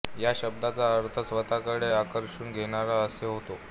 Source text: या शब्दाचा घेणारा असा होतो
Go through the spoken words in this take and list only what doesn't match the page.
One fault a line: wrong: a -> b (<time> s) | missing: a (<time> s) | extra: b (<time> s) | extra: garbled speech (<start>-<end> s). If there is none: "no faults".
extra: अर्थ स्वतःकडे आकर्षून (0.9 s)